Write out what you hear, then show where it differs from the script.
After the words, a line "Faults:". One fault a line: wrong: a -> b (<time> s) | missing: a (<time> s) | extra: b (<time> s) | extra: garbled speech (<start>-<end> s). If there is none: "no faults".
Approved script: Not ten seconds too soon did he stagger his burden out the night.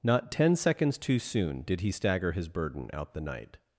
Not ten seconds too soon did he stagger his burden out the night.
Faults:
no faults